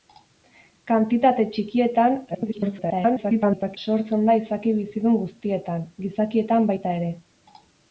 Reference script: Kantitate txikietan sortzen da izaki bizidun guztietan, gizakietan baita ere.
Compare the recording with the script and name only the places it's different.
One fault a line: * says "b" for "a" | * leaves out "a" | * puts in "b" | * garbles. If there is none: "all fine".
* garbles